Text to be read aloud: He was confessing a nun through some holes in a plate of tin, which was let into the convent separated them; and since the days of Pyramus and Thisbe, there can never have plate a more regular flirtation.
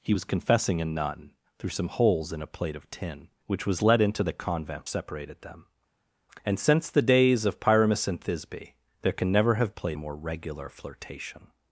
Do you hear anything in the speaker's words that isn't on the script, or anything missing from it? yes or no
no